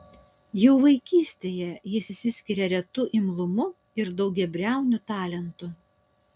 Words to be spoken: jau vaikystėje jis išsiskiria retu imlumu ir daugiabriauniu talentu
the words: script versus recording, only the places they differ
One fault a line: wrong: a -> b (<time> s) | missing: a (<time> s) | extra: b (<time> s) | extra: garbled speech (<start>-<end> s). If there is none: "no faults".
no faults